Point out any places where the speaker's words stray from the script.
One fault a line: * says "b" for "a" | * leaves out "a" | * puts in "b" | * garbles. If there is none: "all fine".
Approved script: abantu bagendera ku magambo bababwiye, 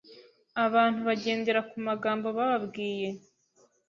all fine